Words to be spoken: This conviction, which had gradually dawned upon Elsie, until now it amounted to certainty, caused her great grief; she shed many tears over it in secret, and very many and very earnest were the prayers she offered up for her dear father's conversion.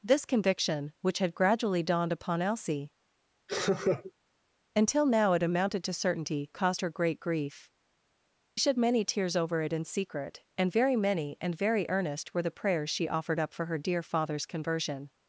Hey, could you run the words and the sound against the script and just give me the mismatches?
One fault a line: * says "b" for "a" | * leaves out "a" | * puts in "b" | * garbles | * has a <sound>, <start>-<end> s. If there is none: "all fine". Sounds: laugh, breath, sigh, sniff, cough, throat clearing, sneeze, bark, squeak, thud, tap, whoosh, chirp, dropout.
* has a laugh, 3.5-4.1 s
* leaves out "she"